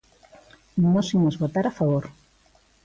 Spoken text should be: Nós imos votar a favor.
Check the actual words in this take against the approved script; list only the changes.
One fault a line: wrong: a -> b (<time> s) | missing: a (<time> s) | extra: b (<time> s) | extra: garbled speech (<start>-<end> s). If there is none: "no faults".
no faults